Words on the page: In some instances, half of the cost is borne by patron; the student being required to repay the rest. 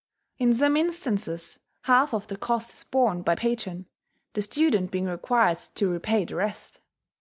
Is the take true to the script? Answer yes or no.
yes